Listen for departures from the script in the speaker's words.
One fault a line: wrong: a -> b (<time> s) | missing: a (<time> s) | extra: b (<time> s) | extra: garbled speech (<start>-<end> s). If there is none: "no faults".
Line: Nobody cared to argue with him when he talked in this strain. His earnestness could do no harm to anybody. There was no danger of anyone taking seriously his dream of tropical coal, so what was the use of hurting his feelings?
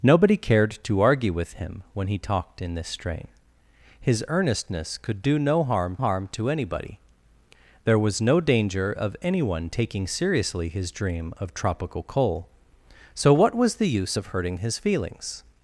extra: harm (6.0 s)